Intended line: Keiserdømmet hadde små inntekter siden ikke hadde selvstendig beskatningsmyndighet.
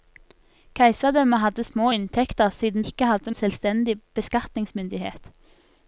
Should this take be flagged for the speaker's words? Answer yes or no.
no